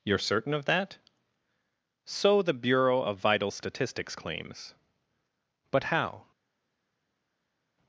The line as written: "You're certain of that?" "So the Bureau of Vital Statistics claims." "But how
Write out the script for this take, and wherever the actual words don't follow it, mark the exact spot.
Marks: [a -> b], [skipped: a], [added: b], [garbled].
"You're certain of that?" "So the Bureau of Vital Statistics claims." "But how